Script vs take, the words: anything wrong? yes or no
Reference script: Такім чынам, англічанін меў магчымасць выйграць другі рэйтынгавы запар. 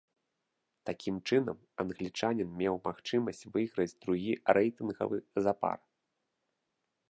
no